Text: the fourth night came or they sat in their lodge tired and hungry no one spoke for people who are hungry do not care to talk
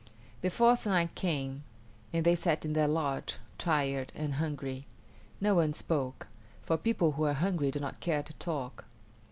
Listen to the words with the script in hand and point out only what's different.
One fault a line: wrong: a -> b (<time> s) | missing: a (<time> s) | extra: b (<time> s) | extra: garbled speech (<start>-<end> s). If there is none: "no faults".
wrong: or -> and (2.1 s)